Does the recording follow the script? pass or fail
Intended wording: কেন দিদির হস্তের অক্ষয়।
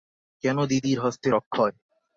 pass